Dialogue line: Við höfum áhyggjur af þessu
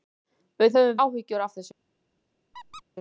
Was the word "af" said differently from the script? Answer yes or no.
no